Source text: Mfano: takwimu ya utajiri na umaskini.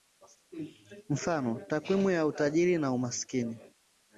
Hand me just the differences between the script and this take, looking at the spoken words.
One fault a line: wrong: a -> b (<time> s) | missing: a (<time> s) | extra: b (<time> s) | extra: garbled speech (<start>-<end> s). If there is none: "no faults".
no faults